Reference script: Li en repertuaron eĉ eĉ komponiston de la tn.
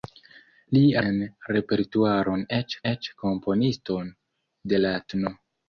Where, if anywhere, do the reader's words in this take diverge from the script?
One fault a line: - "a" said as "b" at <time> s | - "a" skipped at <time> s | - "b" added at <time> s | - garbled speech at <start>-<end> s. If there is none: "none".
none